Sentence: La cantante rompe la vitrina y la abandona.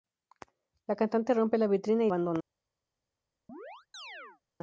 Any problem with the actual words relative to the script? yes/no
yes